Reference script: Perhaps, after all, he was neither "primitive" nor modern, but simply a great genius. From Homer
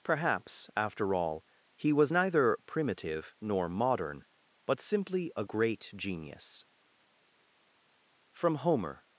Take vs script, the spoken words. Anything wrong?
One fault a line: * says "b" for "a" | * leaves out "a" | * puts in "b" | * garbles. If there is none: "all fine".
all fine